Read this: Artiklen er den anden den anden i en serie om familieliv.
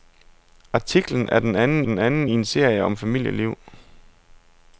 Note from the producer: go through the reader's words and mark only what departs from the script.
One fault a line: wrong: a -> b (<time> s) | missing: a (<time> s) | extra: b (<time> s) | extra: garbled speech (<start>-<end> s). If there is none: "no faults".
no faults